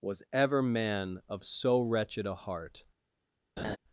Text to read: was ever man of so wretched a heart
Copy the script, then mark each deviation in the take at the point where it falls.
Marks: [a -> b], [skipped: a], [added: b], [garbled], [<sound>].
was ever man of so wretched a heart [laugh]